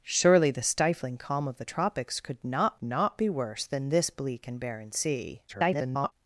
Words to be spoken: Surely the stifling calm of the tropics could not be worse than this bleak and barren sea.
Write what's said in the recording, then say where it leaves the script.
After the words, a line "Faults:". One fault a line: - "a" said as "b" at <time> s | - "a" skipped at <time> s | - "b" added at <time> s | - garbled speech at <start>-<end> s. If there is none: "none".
Surely the stifling calm of the tropics could not not be worse than this bleak and barren sea. [garbled]
Faults:
- "not" added at 2.8 s
- garbled speech at 5.5-6.1 s